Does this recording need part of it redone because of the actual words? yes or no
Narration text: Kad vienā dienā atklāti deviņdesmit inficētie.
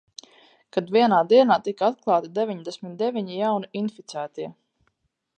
yes